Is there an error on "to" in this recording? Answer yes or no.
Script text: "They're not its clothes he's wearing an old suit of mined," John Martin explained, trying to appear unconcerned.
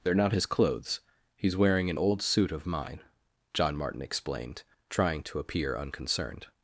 no